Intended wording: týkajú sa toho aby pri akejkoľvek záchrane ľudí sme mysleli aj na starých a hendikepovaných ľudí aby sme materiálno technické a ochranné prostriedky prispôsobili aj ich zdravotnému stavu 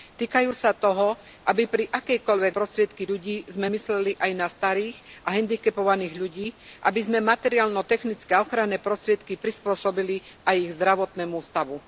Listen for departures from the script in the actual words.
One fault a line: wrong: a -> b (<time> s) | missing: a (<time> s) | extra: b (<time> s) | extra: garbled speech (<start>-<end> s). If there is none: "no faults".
wrong: záchrane -> prostriedky (2.5 s)